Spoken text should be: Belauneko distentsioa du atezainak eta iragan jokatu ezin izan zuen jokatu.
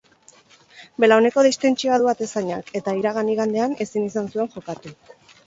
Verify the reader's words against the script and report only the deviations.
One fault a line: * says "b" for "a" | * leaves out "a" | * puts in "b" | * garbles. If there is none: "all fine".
* says "igandean" for "jokatu"